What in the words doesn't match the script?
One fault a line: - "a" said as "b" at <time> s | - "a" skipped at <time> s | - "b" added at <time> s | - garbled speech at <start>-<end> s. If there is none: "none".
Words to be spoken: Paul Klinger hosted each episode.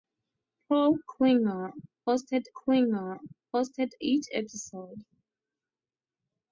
- "Klinger hosted" added at 2.5 s